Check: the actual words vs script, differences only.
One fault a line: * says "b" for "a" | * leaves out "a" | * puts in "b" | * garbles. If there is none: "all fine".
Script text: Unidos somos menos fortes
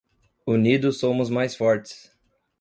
* says "mais" for "menos"